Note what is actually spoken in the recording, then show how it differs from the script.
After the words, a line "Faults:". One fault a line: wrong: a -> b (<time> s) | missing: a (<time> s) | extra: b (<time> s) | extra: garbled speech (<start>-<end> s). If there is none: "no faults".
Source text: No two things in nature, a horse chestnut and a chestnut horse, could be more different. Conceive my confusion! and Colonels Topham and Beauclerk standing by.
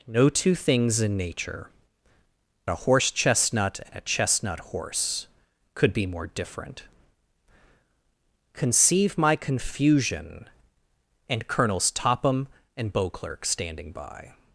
No two things in nature, a horse chestnut and a chestnut horse, could be more different. Conceive my confusion! and Colonels Topham and Beauclerk standing by.
Faults:
no faults